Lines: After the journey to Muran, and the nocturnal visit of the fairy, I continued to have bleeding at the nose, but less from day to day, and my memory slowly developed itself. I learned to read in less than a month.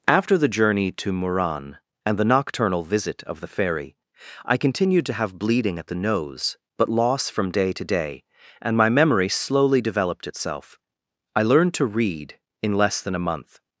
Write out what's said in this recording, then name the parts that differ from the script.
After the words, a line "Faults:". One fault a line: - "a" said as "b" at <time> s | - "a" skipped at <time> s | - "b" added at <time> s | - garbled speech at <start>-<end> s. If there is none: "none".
After the journey to Muran, and the nocturnal visit of the fairy, I continued to have bleeding at the nose, but loss from day to day, and my memory slowly developed itself. I learned to read in less than a month.
Faults:
- "less" said as "loss" at 6.9 s